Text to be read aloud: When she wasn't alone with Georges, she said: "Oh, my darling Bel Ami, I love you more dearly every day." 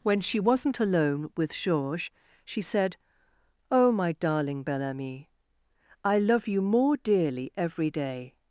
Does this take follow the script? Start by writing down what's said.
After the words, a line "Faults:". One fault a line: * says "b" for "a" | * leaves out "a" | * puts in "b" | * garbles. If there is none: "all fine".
When she wasn't alone with Georges, she said: "Oh, my darling Bel Ami, I love you more dearly every day."
Faults:
all fine